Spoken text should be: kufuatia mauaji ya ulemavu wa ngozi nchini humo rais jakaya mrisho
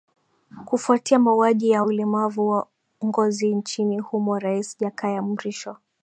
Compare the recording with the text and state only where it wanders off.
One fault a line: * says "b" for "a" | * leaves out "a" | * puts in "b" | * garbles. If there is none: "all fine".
all fine